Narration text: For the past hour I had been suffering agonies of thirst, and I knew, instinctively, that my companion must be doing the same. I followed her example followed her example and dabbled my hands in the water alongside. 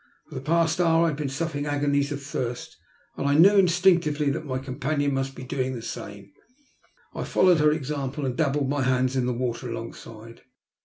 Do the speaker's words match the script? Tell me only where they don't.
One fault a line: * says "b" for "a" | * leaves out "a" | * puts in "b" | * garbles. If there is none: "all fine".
* leaves out "followed her example"